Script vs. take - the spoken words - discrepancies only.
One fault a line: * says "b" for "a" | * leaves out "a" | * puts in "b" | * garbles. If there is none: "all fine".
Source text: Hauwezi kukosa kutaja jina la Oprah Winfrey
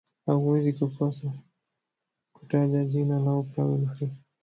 all fine